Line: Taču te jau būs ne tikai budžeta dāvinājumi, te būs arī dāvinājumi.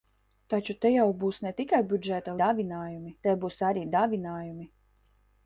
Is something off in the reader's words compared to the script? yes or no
no